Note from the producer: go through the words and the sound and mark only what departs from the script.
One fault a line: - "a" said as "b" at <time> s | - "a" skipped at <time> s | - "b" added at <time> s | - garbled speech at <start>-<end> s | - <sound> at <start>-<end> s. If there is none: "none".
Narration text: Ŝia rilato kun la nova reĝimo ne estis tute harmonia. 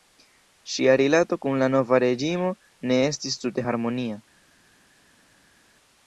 none